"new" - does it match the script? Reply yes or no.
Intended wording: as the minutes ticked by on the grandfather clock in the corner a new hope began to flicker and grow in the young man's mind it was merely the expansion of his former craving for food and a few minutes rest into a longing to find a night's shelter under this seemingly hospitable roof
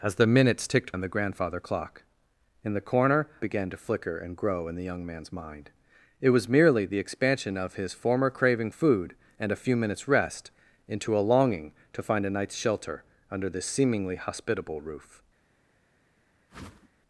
no